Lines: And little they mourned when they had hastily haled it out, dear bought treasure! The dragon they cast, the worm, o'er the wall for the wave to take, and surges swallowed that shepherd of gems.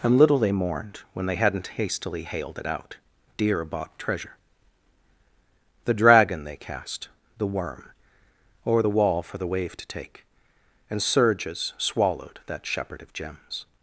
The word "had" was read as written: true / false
false